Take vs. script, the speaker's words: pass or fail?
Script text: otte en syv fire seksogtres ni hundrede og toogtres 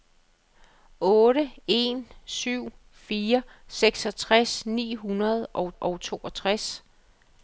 fail